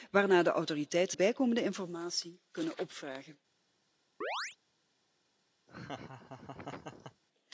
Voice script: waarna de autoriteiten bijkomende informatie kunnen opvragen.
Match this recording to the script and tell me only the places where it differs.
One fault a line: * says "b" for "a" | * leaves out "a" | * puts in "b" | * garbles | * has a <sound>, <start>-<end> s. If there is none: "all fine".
* has a chirp, 4.2-4.6 s
* has a laugh, 5.7-7.2 s